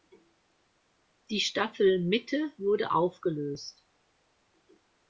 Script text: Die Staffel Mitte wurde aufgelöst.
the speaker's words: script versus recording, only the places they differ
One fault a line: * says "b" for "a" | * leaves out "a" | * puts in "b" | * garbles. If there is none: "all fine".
all fine